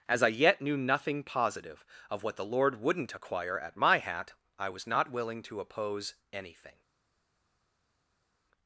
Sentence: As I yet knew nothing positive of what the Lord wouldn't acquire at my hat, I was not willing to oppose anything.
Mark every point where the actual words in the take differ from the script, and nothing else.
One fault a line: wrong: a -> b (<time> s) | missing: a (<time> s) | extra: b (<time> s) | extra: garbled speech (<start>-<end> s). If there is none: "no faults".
no faults